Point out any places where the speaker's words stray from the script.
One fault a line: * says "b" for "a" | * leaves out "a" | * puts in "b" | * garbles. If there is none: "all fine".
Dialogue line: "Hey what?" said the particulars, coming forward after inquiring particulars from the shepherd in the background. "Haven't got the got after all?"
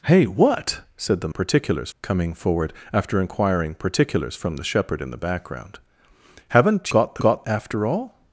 all fine